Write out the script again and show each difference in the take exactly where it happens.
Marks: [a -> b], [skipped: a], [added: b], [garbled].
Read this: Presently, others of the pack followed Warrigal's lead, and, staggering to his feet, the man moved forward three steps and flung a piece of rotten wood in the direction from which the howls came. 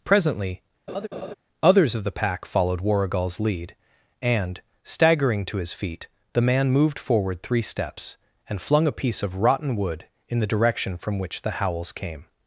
Presently, others of the pack followed Warrigal's lead, and, staggering to his feet, the man moved forward three steps and flung a piece of rotten wood in the direction from which the howls came.